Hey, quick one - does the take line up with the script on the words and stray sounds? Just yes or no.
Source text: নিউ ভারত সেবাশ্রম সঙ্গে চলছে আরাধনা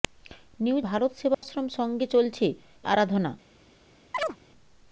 no